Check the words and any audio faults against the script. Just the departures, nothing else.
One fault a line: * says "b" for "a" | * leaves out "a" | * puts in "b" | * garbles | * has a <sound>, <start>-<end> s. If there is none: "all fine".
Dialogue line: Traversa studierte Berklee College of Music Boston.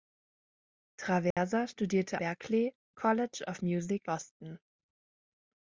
* has a dropout, 1.3-1.4 s